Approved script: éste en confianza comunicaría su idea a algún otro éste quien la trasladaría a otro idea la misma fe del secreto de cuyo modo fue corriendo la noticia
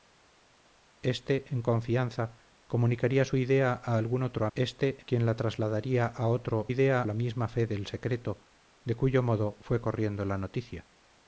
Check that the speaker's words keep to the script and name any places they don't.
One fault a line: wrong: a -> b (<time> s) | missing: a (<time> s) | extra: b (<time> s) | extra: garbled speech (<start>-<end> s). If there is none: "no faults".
no faults